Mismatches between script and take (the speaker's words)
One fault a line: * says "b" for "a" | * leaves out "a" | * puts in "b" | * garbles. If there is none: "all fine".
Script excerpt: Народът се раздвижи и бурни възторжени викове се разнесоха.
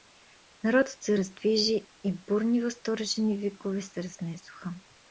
all fine